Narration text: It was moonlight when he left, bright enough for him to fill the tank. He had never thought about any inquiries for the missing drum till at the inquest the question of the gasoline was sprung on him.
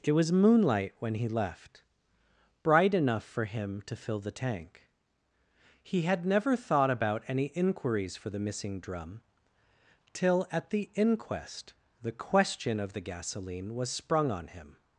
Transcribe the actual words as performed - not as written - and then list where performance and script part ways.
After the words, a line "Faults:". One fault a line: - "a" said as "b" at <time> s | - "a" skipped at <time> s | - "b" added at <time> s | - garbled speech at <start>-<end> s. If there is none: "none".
It was moonlight when he left, bright enough for him to fill the tank. He had never thought about any inquiries for the missing drum till at the inquest the question of the gasoline was sprung on him.
Faults:
none